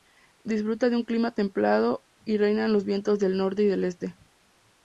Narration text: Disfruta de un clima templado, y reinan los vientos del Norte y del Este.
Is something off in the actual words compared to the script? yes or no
no